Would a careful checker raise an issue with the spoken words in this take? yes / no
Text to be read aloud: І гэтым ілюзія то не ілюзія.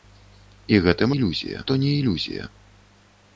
no